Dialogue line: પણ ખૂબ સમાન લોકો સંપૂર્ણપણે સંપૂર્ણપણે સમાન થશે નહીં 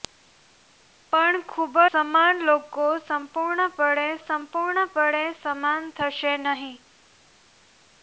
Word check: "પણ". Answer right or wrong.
right